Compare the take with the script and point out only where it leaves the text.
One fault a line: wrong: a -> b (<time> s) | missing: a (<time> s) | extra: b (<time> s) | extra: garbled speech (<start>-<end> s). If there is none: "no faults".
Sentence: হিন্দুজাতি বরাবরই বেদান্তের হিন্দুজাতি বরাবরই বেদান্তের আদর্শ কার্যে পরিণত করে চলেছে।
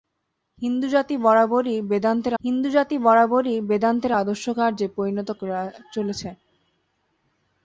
no faults